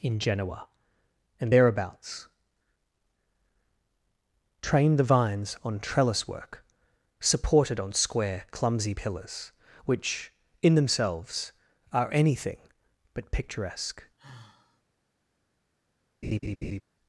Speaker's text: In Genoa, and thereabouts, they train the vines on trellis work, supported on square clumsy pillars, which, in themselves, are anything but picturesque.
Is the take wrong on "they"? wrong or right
wrong